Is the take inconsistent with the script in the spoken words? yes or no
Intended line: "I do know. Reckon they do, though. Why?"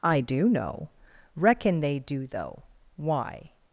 no